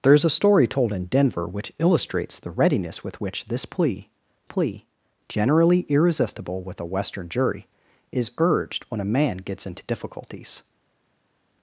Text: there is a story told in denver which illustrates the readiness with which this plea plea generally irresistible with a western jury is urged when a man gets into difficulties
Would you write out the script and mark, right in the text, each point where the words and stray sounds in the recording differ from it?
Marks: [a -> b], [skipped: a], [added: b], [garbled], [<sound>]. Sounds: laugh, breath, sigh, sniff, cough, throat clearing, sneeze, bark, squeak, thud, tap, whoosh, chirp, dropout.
there is a story told in denver which illustrates the readiness with which this plea plea generally irresistible with a western jury is urged when a man gets into difficulties